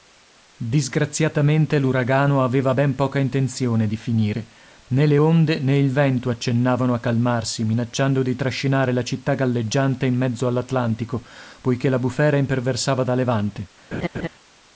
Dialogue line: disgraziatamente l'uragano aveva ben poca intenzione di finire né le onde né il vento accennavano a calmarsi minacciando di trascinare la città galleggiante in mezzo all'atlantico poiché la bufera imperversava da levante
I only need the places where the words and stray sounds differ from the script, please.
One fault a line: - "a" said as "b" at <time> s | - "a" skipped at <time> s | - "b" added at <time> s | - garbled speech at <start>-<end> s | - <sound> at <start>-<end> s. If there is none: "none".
- laugh at 13.9-14.3 s